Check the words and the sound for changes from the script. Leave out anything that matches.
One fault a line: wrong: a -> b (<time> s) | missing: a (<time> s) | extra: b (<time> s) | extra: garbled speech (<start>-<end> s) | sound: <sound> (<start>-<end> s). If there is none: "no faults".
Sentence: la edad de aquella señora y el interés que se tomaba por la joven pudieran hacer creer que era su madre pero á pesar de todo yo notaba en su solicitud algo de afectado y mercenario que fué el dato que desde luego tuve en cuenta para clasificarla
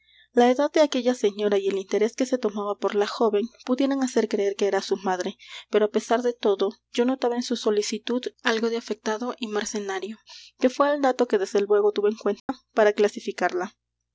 sound: dropout (12.4-12.5 s)